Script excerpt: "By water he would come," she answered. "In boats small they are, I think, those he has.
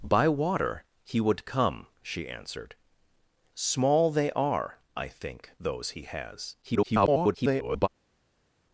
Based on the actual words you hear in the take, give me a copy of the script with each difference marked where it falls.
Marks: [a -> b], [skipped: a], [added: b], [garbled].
"By water he would come," she answered. [skipped: "In boats] small they are, I think, those he has. [garbled]